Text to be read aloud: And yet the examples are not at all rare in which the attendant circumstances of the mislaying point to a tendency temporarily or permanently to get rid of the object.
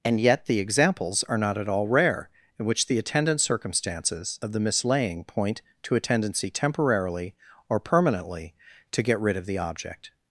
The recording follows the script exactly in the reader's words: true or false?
true